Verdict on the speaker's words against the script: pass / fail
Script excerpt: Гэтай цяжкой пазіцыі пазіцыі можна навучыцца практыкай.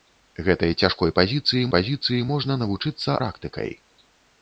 pass